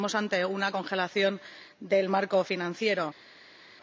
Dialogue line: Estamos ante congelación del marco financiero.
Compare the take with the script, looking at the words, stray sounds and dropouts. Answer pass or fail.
fail